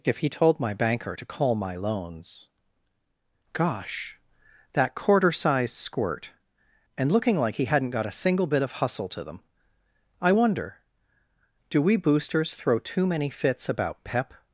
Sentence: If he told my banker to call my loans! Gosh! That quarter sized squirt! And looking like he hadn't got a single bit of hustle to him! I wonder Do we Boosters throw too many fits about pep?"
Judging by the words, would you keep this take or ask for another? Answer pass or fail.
fail